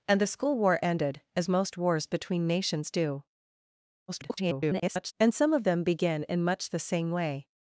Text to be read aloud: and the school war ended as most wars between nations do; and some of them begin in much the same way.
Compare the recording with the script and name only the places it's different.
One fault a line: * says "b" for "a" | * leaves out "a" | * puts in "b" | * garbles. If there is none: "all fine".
* garbles